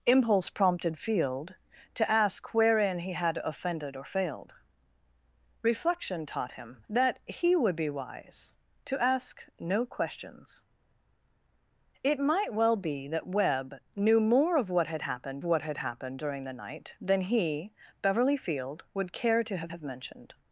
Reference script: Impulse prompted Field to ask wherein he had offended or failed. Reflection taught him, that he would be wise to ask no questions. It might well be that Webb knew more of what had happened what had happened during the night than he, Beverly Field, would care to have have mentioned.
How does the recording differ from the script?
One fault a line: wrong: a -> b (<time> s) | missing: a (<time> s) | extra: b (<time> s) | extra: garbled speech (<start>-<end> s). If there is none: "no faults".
no faults